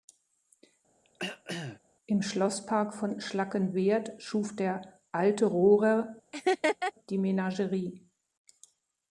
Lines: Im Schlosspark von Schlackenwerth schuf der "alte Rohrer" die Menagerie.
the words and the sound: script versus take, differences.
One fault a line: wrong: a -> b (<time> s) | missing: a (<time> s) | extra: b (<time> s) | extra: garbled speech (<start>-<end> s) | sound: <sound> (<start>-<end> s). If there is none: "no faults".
sound: throat clearing (1.0-1.8 s)
sound: laugh (6.3-6.9 s)